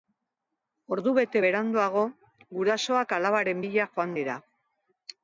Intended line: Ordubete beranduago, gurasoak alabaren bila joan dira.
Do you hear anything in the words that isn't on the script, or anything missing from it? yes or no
no